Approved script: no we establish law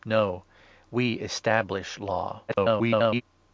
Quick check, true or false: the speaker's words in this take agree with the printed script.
false